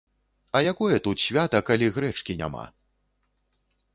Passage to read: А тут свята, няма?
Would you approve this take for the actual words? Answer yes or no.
no